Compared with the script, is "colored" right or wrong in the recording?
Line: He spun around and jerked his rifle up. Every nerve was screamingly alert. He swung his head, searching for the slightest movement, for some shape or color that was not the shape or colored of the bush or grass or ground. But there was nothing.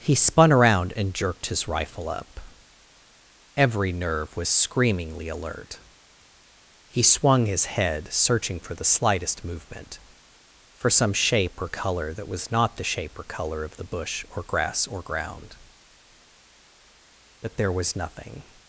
wrong